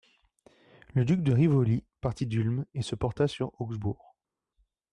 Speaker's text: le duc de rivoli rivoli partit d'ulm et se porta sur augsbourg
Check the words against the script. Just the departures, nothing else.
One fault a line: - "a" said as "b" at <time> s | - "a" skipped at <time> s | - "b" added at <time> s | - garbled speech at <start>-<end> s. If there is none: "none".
- "rivoli" skipped at 1.9 s